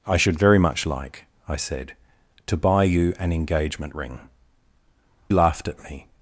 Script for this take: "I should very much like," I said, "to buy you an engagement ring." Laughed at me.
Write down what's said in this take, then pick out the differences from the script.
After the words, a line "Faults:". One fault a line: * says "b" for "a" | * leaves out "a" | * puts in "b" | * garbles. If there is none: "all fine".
"I should very much like," I said, "to buy you an engagement ring." Laughed at me.
Faults:
all fine